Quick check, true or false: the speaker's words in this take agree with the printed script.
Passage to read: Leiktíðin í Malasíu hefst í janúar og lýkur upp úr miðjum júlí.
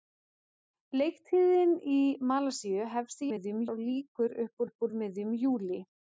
false